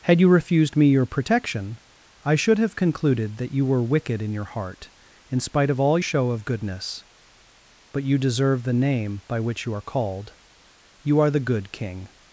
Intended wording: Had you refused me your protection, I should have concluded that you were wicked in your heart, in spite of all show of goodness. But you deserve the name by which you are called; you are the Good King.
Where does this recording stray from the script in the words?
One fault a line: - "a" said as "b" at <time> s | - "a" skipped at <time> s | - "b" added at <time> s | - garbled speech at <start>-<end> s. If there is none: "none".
none